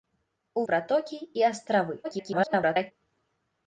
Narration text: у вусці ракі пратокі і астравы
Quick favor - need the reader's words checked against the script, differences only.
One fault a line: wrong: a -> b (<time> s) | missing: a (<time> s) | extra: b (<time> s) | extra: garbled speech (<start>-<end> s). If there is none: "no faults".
missing: вусці ракі (0.6 s)
extra: garbled speech (2.0-2.9 s)